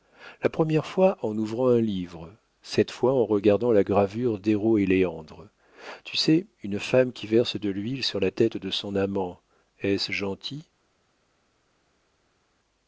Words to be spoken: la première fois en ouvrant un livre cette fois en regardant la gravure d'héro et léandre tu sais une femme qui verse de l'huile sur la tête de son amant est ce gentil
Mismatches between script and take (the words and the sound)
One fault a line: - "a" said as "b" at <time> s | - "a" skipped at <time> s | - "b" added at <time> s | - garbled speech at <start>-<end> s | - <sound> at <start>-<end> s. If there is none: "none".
none